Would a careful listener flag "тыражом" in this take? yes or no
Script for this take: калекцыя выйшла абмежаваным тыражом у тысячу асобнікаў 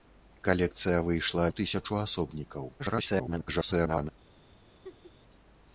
yes